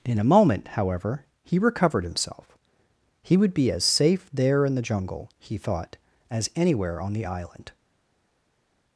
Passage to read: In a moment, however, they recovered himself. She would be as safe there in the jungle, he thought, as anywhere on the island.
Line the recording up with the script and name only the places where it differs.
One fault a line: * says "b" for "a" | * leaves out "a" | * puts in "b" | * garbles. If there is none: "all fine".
* says "he" for "they"
* says "He" for "She"